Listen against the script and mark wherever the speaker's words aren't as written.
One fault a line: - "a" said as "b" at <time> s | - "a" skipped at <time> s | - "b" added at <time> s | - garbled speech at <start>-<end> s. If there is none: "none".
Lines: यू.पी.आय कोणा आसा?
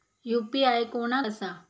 none